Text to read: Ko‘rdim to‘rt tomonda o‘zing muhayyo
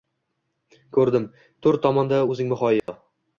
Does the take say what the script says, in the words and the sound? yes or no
no